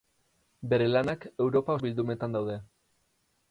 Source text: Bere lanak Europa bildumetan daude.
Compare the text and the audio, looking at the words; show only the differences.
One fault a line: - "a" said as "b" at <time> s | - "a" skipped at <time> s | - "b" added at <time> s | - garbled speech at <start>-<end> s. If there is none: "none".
none